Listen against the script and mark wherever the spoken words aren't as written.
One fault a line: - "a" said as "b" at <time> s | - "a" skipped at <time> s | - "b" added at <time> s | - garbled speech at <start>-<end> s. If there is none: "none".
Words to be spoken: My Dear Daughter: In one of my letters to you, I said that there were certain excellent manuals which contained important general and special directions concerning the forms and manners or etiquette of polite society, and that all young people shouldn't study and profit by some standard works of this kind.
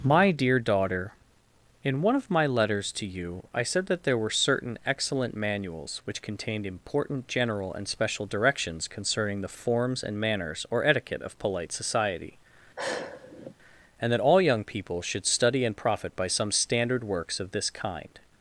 - "shouldn't" said as "should" at 15.0 s